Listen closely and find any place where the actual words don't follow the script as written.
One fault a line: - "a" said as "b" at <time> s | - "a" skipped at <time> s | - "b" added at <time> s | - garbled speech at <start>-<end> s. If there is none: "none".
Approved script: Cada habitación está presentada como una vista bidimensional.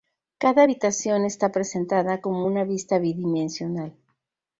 none